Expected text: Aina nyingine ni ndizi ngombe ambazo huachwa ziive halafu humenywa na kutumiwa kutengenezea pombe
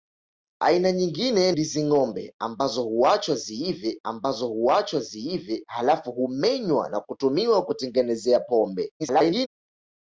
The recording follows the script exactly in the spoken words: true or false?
false